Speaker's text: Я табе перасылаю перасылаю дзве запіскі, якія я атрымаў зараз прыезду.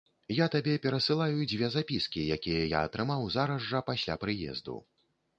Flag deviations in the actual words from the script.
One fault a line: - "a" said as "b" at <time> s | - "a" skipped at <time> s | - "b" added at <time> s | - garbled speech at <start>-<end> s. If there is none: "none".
- "перасылаю" skipped at 1.4 s
- "жа пасля" added at 3.7 s